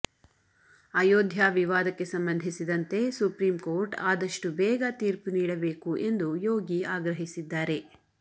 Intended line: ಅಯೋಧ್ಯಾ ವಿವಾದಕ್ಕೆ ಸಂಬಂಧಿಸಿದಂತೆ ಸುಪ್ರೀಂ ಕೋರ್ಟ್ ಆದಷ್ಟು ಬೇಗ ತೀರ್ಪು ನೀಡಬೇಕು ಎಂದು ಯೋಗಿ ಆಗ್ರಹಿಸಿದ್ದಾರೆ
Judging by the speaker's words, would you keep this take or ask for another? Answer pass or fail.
pass